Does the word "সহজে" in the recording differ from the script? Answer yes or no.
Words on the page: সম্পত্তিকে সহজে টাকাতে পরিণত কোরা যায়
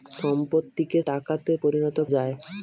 yes